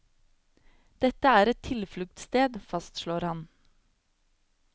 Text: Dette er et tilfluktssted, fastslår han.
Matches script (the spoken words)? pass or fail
pass